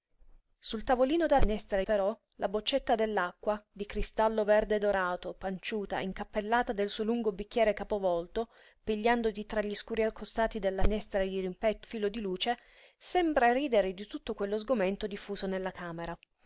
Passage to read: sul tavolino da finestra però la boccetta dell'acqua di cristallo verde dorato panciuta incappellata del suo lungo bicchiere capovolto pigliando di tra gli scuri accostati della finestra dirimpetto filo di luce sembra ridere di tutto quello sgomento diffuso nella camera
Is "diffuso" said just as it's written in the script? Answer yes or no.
yes